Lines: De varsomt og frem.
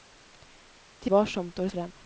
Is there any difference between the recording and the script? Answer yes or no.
no